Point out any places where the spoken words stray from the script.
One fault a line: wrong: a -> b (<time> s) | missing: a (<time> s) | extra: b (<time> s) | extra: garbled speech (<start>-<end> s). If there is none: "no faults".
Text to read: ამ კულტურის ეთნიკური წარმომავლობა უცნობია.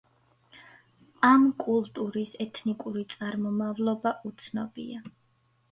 no faults